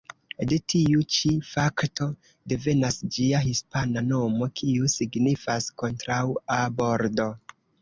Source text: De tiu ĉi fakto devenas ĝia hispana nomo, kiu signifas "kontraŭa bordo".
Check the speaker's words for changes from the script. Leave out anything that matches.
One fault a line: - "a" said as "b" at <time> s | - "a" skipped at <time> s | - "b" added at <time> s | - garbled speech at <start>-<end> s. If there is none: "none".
none